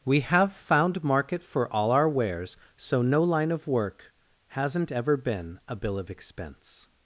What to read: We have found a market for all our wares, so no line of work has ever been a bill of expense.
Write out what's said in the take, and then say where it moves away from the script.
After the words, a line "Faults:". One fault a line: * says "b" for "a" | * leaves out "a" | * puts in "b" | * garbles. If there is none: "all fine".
We have found market for all our wares, so no line of work hasn't ever been a bill of expense.
Faults:
* leaves out "a"
* says "hasn't" for "has"